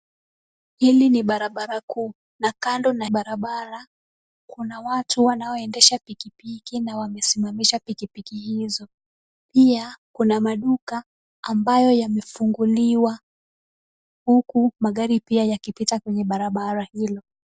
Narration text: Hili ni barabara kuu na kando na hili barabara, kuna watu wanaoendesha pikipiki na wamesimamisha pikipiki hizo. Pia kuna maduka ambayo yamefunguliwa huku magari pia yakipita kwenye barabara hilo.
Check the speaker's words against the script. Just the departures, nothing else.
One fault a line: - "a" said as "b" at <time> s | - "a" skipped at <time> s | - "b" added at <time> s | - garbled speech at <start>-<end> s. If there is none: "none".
- "hili" skipped at 3.0 s